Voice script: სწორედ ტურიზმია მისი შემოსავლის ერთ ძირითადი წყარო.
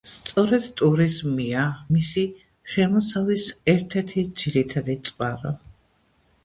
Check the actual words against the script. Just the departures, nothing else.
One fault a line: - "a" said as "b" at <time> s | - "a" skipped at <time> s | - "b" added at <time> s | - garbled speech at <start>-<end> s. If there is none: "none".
- "ერთი" added at 4.0 s